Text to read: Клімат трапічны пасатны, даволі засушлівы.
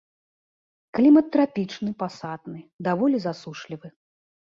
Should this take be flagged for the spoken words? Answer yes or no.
no